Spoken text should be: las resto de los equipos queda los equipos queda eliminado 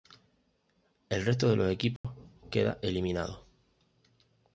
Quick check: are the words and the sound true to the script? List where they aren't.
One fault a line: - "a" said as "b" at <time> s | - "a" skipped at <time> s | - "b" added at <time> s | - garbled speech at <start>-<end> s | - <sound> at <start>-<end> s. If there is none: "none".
- "las" said as "el" at 1.1 s
- dropout at 2.0-2.0 s
- "los equipos queda" skipped at 2.8 s